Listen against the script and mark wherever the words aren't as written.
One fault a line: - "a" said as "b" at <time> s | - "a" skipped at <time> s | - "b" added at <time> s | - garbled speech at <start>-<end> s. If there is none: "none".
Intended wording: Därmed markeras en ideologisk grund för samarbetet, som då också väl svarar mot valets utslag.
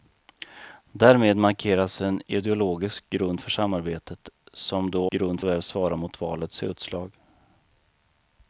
- "också" said as "grund" at 5.1 s